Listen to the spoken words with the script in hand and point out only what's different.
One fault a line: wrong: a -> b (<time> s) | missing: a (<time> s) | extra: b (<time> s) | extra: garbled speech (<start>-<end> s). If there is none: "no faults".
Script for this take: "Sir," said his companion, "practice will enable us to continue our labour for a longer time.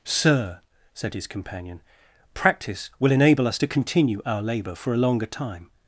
no faults